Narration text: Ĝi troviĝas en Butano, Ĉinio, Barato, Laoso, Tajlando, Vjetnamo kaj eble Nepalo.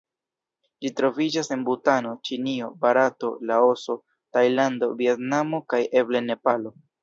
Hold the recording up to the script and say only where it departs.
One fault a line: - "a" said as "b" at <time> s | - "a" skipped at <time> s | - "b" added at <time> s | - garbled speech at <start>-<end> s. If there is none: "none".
none